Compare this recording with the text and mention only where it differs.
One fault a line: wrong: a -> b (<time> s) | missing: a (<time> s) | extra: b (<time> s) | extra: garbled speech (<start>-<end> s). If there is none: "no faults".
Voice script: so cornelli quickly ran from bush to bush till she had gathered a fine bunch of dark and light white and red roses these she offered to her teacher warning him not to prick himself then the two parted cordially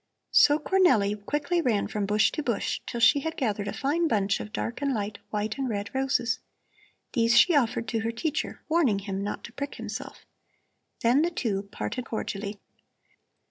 no faults